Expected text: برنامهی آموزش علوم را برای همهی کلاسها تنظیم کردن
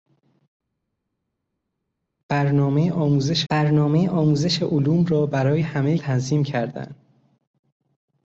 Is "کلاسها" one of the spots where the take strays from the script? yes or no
yes